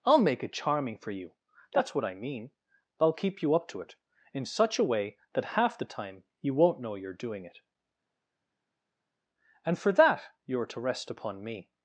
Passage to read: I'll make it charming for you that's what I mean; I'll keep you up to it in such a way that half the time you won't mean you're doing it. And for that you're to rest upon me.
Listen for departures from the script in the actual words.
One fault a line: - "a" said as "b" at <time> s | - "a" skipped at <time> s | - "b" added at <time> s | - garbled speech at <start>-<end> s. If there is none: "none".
- "mean" said as "know" at 6.8 s